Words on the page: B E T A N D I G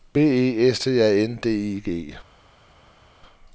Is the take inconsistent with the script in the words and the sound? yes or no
yes